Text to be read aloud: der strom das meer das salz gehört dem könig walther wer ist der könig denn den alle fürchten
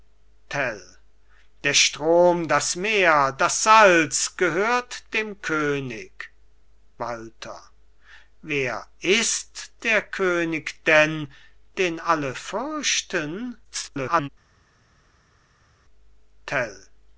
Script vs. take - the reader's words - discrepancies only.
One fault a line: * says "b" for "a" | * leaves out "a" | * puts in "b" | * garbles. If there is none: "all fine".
* garbles